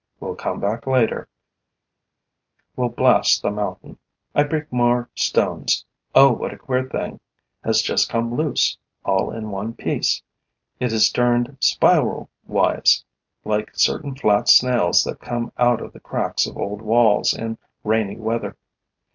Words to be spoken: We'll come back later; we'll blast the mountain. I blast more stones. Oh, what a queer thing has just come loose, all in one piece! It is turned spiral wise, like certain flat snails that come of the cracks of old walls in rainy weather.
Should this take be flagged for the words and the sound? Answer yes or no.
yes